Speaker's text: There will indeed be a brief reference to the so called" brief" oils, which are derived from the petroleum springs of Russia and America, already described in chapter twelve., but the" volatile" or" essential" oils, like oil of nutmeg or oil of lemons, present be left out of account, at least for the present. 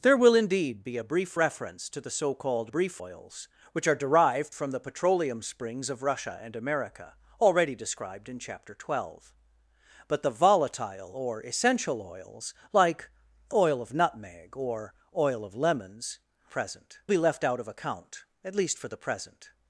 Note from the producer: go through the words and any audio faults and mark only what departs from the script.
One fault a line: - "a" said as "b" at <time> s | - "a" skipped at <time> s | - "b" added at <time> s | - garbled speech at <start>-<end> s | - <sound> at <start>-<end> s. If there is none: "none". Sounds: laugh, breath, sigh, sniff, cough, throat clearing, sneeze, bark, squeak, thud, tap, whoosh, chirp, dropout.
none